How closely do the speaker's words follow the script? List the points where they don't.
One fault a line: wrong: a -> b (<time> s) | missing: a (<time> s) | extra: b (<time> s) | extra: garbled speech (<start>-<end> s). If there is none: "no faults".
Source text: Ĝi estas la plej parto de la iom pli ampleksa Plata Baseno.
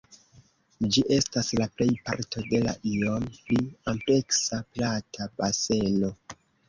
no faults